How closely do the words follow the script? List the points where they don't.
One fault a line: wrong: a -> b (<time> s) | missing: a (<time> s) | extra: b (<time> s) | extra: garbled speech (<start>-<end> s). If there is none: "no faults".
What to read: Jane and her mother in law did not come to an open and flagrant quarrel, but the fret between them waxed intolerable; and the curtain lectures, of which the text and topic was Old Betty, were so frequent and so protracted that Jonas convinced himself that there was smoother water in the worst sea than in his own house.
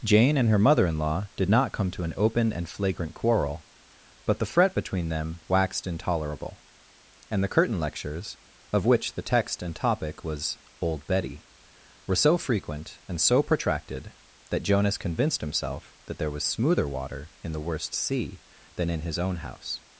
no faults